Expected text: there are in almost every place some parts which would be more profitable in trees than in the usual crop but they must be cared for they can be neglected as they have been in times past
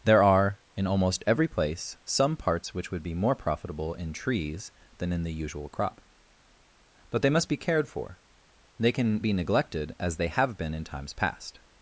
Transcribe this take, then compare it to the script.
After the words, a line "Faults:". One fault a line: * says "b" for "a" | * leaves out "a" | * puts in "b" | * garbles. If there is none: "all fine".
there are in almost every place some parts which would be more profitable in trees than in the usual crop but they must be cared for they can be neglected as they have been in times past
Faults:
all fine